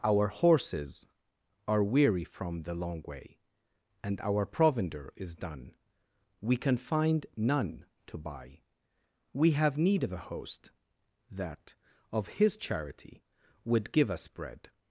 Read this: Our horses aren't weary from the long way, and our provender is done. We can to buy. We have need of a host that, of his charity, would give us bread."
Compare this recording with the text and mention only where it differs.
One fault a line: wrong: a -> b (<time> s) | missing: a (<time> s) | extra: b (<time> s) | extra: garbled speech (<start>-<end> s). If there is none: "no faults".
wrong: aren't -> are (1.7 s)
extra: find none (6.8 s)